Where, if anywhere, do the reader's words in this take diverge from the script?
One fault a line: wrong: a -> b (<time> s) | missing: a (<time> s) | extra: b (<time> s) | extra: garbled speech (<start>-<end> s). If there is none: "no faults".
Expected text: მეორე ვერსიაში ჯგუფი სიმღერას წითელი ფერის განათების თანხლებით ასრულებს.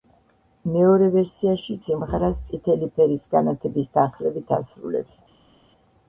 missing: ჯგუფი (1.8 s)